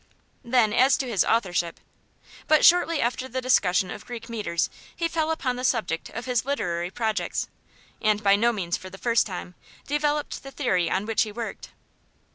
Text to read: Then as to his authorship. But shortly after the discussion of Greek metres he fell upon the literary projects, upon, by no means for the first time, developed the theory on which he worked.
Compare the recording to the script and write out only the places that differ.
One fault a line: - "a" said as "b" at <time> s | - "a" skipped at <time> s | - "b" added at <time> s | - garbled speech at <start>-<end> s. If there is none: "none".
- "subject of his" added at 5.6 s
- "upon" said as "and" at 8.0 s